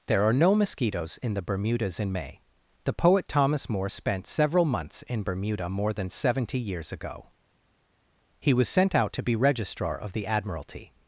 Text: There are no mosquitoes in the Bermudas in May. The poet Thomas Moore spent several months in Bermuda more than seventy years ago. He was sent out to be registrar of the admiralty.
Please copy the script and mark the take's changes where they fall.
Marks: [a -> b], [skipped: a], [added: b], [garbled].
There are no mosquitoes in the Bermudas in May. The poet Thomas Moore spent several months in Bermuda more than seventy years ago. He was sent out to be registrar of the admiralty.